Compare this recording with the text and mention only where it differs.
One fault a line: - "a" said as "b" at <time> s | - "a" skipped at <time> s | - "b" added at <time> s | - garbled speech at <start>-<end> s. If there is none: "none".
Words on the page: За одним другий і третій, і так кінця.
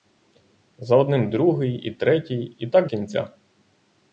none